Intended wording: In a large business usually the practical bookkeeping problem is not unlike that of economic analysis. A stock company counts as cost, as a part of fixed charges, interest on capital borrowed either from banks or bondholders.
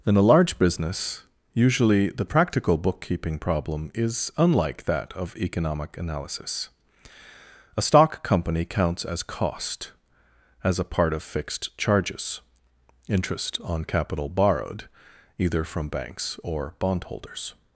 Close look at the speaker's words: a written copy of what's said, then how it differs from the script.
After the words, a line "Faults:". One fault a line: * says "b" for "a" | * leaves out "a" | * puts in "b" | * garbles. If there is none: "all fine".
In a large business usually the practical bookkeeping problem is unlike that of economic analysis. A stock company counts as cost, as a part of fixed charges, interest on capital borrowed either from banks or bondholders.
Faults:
* leaves out "not"